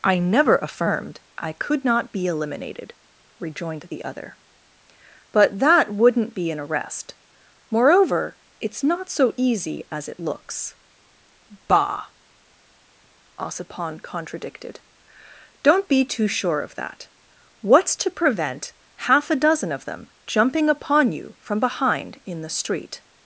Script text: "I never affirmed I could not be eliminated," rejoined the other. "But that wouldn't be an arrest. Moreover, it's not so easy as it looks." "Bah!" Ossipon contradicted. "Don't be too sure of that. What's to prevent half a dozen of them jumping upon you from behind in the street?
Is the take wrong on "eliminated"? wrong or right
right